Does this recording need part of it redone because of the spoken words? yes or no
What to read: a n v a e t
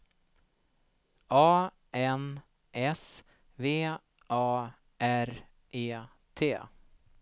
yes